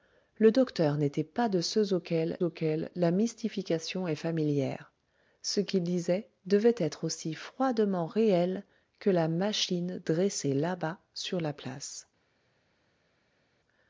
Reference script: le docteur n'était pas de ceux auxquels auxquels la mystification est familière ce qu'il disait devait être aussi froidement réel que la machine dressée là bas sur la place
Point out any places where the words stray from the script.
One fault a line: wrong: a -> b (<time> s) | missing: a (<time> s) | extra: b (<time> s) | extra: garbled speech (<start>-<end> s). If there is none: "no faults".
no faults